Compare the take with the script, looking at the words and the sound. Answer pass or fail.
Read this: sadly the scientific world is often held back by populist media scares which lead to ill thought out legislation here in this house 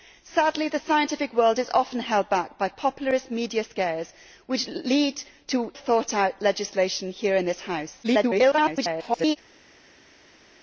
fail